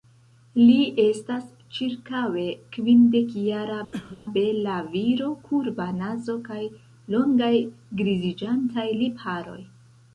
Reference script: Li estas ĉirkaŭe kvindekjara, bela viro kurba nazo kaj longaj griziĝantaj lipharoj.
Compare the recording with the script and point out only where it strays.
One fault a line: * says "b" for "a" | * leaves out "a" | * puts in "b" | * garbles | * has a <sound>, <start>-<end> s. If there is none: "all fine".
* has a cough, 3.9-4.2 s